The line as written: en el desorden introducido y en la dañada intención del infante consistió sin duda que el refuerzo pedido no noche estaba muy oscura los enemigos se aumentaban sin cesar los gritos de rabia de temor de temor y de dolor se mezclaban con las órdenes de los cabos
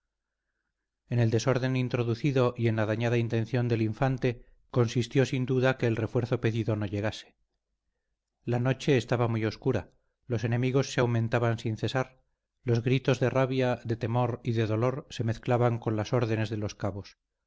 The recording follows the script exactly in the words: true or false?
false